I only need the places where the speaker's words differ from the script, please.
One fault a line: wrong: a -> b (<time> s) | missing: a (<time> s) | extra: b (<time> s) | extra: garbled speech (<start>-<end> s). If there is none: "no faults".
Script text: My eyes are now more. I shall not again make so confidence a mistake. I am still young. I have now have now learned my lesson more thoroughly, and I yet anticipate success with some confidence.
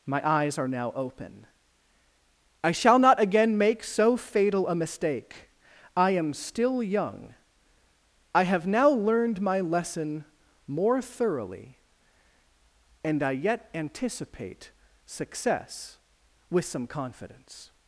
wrong: more -> open (0.9 s)
wrong: confidence -> fatal (4.2 s)
missing: have now (8.9 s)